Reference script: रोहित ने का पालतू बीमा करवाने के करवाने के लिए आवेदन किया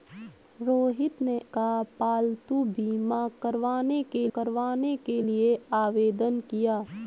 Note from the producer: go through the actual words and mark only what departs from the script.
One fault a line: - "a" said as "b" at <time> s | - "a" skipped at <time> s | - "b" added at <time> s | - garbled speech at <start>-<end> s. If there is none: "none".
none